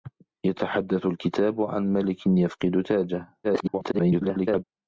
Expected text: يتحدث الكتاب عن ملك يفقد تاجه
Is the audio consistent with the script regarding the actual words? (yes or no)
no